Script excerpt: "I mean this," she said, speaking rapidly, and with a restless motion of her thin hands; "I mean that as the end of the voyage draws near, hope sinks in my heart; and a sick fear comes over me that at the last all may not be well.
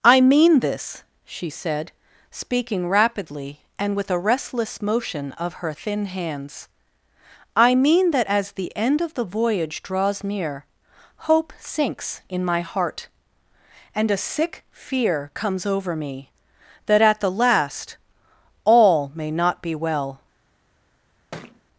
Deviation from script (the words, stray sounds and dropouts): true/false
true